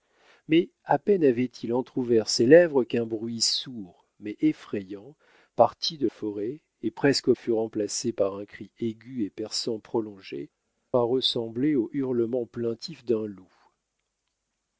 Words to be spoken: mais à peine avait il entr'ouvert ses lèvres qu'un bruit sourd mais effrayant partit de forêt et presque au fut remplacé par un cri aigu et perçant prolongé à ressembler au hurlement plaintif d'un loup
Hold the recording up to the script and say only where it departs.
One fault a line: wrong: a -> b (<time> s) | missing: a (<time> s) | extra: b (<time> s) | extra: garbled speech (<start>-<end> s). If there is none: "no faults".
no faults